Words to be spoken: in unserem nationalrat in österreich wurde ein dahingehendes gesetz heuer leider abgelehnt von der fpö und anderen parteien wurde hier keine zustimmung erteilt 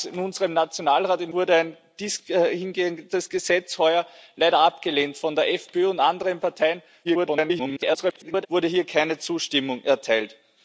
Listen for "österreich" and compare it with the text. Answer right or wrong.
wrong